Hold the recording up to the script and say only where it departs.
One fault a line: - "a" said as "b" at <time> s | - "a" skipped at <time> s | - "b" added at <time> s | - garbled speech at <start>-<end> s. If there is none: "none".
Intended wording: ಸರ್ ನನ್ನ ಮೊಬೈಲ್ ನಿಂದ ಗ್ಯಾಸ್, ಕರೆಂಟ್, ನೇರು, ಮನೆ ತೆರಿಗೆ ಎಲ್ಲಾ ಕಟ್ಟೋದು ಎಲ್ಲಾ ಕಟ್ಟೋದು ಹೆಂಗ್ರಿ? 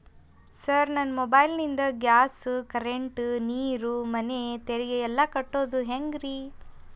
- "ಎಲ್ಲಾ ಕಟ್ಟೋದು" skipped at 5.8 s